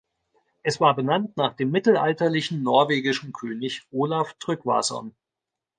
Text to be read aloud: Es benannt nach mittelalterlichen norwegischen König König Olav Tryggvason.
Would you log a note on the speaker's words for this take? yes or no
yes